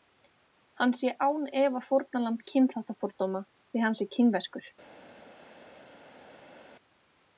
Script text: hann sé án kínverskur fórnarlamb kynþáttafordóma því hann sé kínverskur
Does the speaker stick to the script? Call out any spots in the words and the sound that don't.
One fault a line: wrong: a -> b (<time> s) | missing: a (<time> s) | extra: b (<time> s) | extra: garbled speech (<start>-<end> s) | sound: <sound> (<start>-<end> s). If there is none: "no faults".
wrong: kínverskur -> efa (1.6 s)